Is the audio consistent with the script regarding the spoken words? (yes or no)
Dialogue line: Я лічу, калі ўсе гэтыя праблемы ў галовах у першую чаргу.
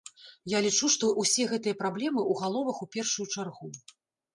no